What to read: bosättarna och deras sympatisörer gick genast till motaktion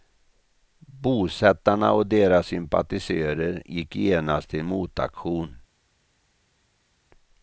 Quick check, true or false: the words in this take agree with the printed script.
true